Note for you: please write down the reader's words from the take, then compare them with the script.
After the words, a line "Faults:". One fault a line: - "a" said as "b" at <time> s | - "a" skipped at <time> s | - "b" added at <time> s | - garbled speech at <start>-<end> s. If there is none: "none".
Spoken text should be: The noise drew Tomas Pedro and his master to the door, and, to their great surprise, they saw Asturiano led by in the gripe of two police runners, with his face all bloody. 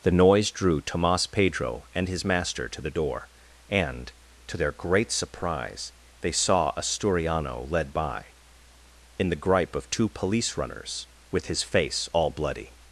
The noise drew Tomas Pedro and his master to the door, and, to their great surprise, they saw Asturiano led by in the gripe of two police runners, with his face all bloody.
Faults:
none